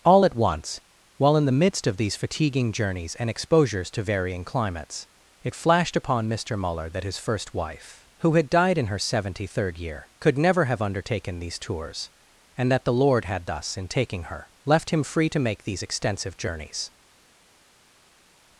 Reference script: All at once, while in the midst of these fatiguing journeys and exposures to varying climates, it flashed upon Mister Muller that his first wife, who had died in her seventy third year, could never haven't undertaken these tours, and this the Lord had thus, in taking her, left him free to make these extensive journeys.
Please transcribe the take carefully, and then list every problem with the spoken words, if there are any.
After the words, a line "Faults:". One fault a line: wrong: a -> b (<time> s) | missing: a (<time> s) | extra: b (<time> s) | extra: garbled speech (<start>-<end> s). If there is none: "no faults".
All at once, while in the midst of these fatiguing journeys and exposures to varying climates, it flashed upon Mister Muller that his first wife, who had died in her seventy third year, could never have undertaken these tours, and that the Lord had thus, in taking her, left him free to make these extensive journeys.
Faults:
wrong: haven't -> have (10.6 s)
wrong: this -> that (12.7 s)